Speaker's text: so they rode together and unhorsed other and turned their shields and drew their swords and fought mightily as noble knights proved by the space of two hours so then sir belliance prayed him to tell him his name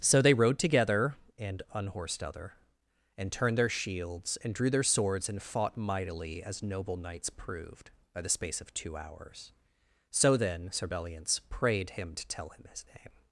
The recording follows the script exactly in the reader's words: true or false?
true